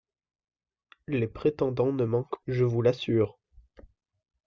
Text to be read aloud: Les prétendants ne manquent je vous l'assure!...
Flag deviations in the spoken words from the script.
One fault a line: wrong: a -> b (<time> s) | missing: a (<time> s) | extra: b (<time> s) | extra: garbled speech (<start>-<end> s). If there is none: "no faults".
no faults